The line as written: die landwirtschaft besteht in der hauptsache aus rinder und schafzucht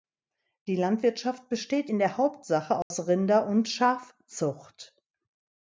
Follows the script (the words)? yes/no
yes